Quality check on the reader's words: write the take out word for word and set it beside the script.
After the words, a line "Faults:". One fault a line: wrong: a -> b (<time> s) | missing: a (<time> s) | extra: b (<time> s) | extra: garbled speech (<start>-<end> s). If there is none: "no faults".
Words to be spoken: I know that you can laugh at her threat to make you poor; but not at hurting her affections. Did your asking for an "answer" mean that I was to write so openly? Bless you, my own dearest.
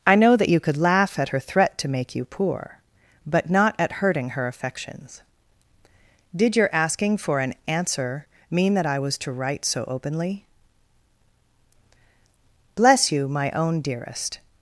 I know that you could laugh at her threat to make you poor; but not at hurting her affections. Did your asking for an "answer" mean that I was to write so openly? Bless you, my own dearest.
Faults:
wrong: can -> could (0.6 s)